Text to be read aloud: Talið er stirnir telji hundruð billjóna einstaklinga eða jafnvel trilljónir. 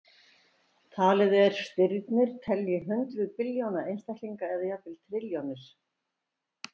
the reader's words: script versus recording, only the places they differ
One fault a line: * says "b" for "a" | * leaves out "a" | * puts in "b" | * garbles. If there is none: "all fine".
all fine